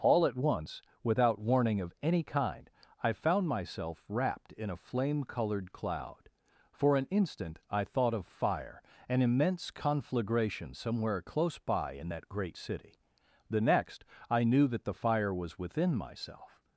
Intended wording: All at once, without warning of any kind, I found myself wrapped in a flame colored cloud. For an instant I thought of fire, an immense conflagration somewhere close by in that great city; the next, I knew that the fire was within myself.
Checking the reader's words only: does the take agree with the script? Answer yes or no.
yes